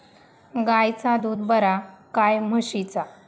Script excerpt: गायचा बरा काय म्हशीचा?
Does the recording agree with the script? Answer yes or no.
no